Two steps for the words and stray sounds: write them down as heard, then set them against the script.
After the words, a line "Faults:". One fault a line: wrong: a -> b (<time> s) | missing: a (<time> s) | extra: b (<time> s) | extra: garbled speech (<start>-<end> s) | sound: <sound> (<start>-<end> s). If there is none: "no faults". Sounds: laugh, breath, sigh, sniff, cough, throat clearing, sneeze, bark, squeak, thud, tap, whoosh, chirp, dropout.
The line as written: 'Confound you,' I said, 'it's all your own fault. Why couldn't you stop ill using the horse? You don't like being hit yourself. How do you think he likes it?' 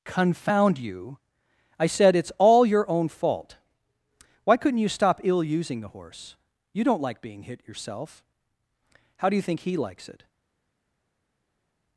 'Confound you,' I said, 'it's all your own fault. Why couldn't you stop ill using the horse? You don't like being hit yourself. How do you think he likes it?'
Faults:
no faults